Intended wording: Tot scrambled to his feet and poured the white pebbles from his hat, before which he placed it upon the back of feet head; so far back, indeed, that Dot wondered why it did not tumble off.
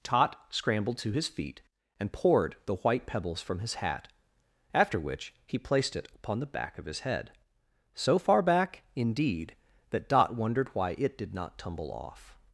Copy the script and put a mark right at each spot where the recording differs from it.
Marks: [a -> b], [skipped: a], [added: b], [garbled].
Tot scrambled to his feet and poured the white pebbles from his hat, [before -> after] which he placed it upon the back of [feet -> his] head; so far back, indeed, that Dot wondered why it did not tumble off.